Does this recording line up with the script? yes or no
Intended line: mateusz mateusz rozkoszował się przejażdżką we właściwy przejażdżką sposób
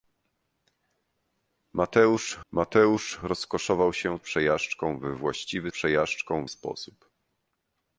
yes